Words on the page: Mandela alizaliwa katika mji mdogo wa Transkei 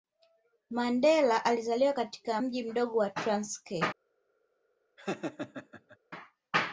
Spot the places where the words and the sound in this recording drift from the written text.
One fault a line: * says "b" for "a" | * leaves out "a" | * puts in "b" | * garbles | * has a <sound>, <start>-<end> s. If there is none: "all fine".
* has a laugh, 5.0-6.0 s